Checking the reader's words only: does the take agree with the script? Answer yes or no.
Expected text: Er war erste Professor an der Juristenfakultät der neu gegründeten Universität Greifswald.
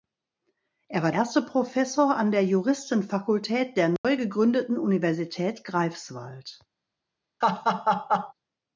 yes